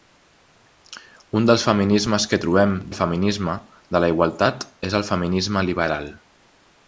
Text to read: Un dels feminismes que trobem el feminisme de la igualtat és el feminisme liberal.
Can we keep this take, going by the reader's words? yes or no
yes